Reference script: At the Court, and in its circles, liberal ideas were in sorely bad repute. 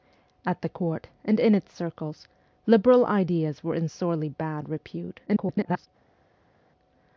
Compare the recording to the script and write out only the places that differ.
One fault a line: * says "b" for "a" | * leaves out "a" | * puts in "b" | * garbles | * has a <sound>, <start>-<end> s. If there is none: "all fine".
* garbles